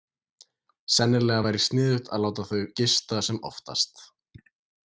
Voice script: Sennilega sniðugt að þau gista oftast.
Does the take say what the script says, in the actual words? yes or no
no